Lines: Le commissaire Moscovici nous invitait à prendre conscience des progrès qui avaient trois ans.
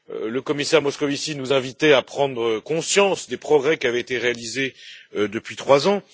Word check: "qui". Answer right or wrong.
right